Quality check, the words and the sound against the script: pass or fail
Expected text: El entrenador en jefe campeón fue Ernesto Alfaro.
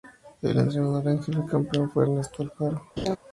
fail